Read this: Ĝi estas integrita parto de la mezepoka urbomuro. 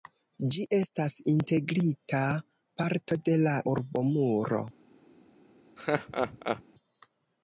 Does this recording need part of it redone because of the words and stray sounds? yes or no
yes